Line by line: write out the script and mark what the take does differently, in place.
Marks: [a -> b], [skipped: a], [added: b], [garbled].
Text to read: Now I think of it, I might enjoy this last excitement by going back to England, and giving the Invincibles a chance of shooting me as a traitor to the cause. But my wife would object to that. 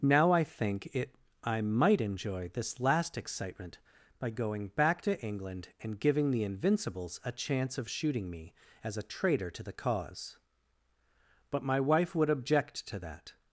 Now I think [skipped: of] it, I might enjoy this last excitement by going back to England, and giving the Invincibles a chance of shooting me as a traitor to the cause. But my wife would object to that.